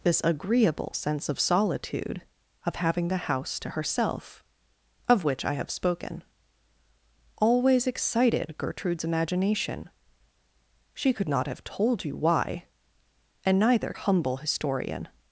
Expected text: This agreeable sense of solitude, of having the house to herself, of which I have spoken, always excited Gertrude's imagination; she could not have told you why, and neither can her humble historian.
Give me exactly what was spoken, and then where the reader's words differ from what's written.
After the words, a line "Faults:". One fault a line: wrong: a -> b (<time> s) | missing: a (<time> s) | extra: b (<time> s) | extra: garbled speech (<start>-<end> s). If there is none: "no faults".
This agreeable sense of solitude, of having the house to herself, of which I have spoken, always excited Gertrude's imagination; she could not have told you why, and neither humble historian.
Faults:
missing: can her (13.9 s)